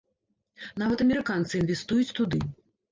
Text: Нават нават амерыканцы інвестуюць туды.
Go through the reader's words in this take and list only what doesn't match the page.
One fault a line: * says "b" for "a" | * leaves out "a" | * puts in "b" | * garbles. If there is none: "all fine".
* leaves out "нават"